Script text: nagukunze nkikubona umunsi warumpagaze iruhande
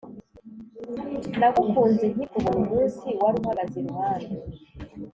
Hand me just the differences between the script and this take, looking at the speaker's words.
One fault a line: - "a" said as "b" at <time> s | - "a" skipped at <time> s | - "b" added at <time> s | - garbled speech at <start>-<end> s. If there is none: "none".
none